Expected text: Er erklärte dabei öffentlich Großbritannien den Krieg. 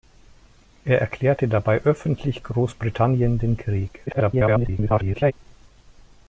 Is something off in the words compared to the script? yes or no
yes